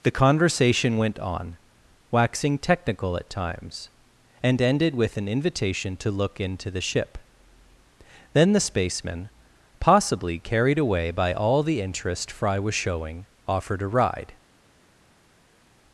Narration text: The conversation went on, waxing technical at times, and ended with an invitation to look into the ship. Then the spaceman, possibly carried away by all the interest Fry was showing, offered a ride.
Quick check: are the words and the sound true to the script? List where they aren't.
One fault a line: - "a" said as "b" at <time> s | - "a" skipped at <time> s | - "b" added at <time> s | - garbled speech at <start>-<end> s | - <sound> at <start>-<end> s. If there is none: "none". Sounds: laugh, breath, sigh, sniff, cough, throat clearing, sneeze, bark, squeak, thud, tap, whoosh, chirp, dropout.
none